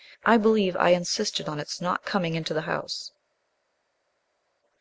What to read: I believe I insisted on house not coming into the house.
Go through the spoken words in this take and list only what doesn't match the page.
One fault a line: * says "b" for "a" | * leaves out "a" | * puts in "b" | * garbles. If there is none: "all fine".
* says "its" for "house"